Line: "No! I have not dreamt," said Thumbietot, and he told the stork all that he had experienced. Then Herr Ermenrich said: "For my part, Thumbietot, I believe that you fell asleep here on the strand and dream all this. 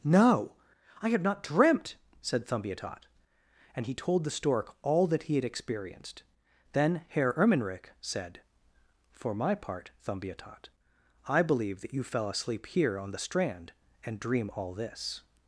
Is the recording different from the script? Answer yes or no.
no